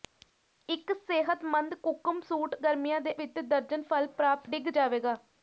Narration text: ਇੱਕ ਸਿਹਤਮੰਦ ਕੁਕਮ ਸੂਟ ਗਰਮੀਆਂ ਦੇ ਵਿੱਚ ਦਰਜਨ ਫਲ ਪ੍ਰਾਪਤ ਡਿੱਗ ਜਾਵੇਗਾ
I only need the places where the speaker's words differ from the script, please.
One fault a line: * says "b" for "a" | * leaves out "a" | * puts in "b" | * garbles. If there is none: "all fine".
all fine